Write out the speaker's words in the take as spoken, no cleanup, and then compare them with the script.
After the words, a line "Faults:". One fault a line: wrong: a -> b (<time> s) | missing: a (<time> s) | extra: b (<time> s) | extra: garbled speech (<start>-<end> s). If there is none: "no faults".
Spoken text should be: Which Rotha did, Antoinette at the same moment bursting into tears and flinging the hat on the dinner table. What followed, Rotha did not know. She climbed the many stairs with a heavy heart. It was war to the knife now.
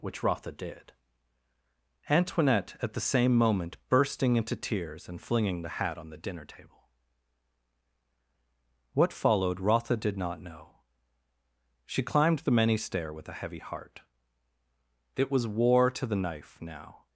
Which Rotha did, Antoinette at the same moment bursting into tears and flinging the hat on the dinner table. What followed, Rotha did not know. She climbed the many stair with a heavy heart. It was war to the knife now.
Faults:
wrong: stairs -> stair (12.8 s)